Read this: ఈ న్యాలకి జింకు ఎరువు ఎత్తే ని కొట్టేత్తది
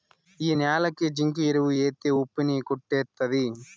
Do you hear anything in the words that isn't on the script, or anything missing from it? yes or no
yes